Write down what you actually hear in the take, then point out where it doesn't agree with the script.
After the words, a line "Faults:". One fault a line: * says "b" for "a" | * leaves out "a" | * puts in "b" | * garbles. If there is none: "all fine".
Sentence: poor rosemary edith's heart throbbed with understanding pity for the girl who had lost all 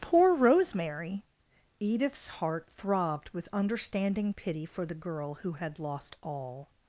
poor rosemary edith's heart throbbed with understanding pity for the girl who had lost all
Faults:
all fine